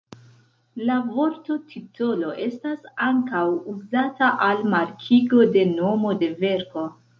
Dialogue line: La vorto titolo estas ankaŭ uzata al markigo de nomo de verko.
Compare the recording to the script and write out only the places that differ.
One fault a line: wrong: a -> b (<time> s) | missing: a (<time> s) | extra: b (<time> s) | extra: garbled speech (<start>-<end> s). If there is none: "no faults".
no faults